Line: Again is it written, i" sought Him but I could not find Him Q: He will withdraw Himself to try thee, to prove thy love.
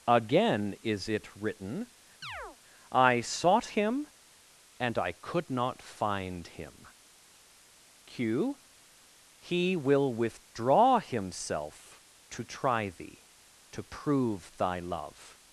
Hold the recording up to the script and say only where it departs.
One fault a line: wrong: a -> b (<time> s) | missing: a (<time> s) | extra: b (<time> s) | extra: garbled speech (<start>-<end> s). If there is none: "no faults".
wrong: but -> and (4.8 s)